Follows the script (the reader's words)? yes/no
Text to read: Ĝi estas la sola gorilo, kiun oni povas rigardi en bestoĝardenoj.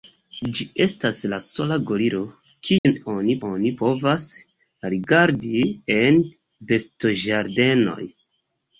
no